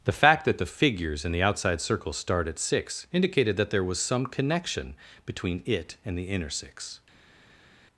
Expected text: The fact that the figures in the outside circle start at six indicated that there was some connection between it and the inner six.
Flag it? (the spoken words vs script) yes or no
no